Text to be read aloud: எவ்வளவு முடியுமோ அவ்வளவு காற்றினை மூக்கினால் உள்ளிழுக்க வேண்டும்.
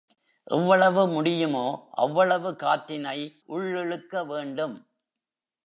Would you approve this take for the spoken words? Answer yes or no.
no